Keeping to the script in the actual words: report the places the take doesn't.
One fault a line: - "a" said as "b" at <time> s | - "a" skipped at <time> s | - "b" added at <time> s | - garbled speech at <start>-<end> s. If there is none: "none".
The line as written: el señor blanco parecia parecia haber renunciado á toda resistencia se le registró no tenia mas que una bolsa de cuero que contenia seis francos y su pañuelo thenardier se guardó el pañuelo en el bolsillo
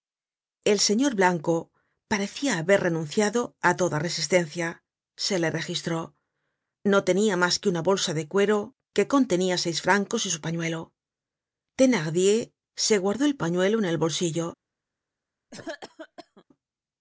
- "parecia" skipped at 2.5 s